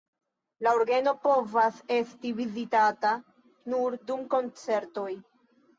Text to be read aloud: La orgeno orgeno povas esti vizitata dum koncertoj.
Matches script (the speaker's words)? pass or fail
fail